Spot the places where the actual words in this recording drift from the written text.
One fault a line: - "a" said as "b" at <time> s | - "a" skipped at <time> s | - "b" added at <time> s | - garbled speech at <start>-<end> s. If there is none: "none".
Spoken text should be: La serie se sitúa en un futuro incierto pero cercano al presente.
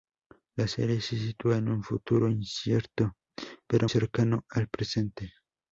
none